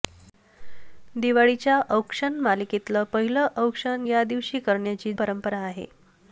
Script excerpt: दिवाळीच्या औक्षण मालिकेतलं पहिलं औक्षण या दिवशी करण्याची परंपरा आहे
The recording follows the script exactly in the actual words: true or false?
true